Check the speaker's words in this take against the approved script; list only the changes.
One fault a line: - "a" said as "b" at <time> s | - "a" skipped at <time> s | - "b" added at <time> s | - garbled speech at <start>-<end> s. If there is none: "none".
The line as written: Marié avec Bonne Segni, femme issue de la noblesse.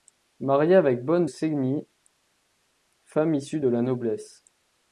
none